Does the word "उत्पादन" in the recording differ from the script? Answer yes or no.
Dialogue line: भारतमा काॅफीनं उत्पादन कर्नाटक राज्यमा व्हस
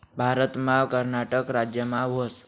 yes